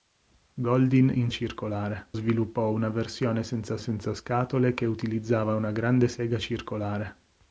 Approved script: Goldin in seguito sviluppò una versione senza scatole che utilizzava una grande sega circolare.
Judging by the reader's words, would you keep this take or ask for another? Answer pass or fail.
fail